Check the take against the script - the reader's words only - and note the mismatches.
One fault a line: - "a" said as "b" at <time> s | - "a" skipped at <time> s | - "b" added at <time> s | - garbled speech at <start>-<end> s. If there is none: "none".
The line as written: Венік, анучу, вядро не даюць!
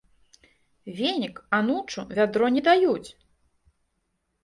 none